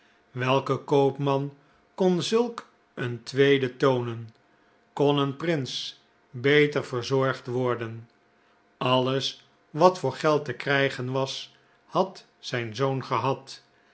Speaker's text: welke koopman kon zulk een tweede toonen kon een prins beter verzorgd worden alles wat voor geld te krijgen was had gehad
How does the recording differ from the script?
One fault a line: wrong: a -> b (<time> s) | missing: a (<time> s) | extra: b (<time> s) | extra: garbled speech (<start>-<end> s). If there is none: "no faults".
extra: zijn zoon (12.4 s)